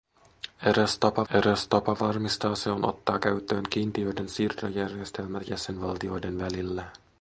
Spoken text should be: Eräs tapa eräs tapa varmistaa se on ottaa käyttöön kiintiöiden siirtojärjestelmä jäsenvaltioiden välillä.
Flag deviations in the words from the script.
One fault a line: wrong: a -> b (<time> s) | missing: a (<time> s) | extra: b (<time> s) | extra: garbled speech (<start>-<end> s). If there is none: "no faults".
no faults